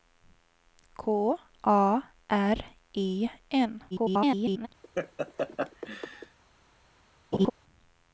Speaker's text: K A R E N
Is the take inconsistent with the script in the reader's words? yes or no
yes